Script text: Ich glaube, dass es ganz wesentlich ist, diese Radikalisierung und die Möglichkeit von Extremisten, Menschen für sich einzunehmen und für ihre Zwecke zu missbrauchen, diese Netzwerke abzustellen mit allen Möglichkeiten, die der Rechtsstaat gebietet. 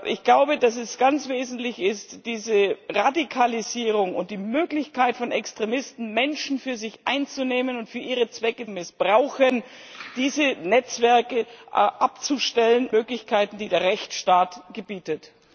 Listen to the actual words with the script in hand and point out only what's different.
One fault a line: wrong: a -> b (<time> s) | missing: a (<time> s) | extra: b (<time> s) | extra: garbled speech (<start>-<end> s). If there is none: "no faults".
missing: zu (8.7 s)
missing: mit allen (12.9 s)